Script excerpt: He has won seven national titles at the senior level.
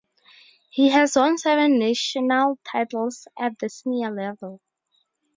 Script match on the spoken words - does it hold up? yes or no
yes